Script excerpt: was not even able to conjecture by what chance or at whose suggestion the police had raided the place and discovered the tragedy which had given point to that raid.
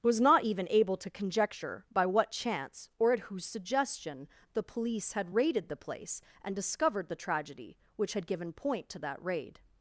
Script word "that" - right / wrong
right